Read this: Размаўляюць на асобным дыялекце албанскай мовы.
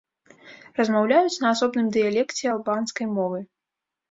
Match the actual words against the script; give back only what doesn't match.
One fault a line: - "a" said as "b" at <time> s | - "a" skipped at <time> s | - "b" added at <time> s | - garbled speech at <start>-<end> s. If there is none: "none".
none